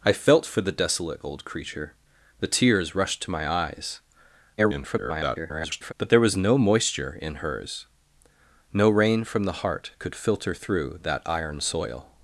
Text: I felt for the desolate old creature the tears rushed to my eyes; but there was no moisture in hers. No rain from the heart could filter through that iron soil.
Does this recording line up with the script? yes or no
no